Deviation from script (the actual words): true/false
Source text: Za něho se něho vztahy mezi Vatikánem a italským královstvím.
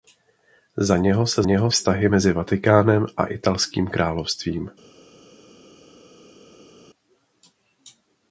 false